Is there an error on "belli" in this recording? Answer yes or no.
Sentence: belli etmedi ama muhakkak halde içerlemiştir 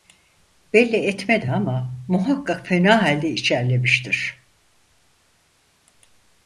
no